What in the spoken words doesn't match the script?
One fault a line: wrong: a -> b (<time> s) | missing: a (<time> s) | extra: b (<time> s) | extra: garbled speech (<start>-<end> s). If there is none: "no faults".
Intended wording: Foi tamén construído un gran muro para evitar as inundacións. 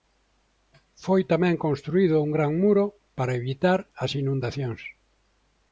no faults